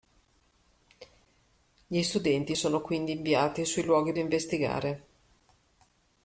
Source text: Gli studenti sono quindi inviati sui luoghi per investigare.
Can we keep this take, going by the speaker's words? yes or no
no